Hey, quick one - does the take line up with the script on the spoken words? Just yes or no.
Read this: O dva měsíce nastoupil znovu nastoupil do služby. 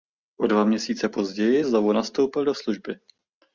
no